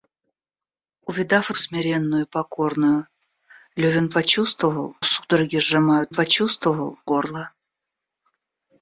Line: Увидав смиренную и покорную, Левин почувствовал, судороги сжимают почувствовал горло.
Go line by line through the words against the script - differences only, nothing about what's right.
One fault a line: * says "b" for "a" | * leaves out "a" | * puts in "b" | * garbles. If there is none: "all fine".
all fine